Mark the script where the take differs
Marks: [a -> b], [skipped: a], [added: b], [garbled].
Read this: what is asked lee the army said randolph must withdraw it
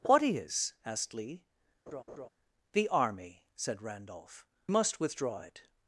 what is asked lee the army said randolph must withdraw it